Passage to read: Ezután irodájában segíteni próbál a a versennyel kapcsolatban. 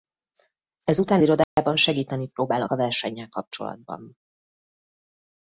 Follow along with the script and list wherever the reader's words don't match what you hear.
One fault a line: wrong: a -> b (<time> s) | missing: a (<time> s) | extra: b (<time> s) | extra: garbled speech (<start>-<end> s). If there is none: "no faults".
no faults